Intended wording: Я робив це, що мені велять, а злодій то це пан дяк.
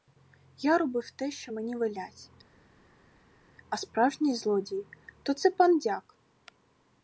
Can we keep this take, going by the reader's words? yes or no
no